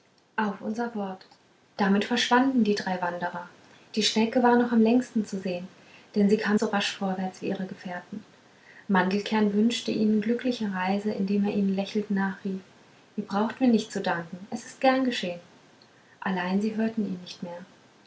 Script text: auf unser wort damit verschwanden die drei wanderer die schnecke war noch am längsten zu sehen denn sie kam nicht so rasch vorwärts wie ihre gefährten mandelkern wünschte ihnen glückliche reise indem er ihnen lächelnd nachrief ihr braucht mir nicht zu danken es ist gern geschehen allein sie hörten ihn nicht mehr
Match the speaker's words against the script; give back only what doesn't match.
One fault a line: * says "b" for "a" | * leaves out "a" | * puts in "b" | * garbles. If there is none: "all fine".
* leaves out "nicht"